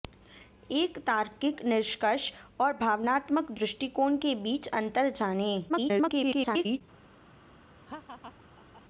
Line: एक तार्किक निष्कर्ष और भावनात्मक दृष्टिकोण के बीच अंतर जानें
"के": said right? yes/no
yes